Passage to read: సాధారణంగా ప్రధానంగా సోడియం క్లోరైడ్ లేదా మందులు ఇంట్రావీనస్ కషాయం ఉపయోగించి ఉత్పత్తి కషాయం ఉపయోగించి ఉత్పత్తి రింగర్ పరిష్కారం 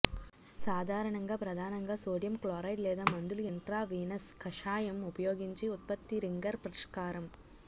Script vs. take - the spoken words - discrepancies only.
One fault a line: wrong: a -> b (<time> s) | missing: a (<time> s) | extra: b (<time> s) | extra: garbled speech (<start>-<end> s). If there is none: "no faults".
missing: కషాయం ఉపయోగించి ఉత్పత్తి (6.2 s)